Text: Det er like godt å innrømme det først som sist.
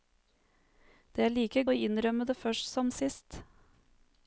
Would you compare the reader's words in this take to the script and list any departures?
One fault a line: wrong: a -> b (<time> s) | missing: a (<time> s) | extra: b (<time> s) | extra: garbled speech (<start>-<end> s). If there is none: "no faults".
missing: godt (1.6 s)